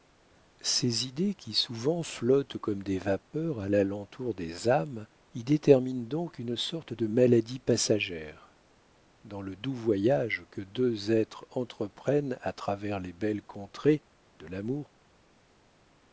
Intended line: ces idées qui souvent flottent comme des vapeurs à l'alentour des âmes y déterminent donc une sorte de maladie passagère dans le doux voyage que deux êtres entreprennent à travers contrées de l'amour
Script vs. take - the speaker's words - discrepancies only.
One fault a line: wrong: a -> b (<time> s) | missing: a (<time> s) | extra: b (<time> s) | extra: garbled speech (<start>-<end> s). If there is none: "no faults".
extra: les belles (13.0 s)